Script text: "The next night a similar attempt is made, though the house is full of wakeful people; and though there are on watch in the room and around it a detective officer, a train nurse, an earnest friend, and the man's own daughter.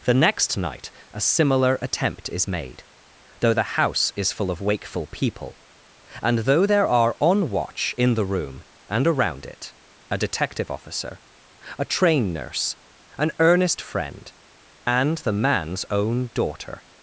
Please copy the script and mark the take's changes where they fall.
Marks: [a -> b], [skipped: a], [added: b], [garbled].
"The next night a similar attempt is made, though the house is full of wakeful people; and though there are on watch in the room and around it a detective officer, a train nurse, an earnest friend, and the man's own daughter.